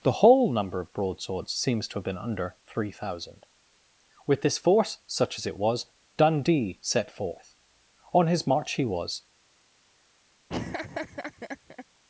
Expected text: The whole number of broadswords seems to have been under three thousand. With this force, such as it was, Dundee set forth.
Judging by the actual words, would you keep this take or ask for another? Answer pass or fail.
fail